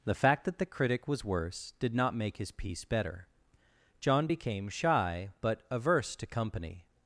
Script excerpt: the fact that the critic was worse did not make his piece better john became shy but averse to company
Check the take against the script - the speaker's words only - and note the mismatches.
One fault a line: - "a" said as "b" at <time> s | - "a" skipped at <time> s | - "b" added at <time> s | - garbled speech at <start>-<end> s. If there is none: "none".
none